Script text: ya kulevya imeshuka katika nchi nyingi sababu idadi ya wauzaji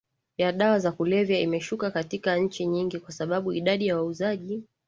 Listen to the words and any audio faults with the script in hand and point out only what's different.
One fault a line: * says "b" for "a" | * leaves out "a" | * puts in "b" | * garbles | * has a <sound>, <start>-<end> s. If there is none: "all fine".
* puts in "dawa za"
* puts in "kwa"